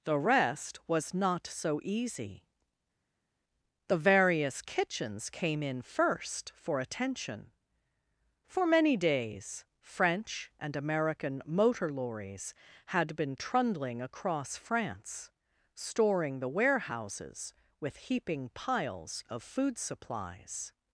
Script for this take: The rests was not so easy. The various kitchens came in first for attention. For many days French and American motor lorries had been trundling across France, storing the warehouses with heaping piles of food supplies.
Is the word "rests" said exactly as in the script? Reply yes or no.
no